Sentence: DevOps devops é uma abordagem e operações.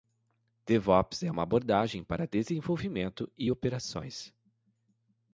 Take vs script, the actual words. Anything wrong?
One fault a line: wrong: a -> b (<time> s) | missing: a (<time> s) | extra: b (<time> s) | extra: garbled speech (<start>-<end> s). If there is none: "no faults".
missing: devops (1.2 s)
extra: para desenvolvimento (2.1 s)